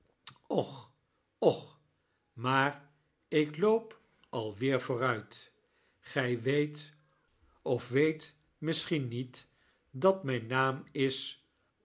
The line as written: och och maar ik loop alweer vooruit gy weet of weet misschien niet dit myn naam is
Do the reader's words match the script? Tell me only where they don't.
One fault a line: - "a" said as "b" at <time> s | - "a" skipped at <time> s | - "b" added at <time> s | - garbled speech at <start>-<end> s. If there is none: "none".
- "dit" said as "dat" at 9.9 s